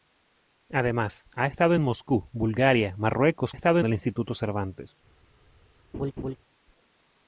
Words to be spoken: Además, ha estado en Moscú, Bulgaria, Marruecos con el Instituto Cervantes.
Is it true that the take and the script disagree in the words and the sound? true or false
true